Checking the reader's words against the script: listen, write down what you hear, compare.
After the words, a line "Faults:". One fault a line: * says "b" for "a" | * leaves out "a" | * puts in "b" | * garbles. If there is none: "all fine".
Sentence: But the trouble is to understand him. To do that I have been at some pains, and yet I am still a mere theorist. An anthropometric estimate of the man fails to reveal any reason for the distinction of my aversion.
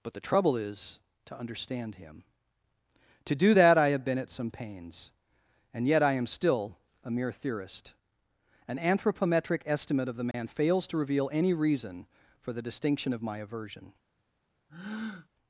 But the trouble is to understand him. To do that I have been at some pains, and yet I am still a mere theorist. An anthropometric estimate of the man fails to reveal any reason for the distinction of my aversion.
Faults:
all fine